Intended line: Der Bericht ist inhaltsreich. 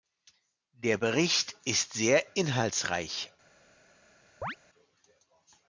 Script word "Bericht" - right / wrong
right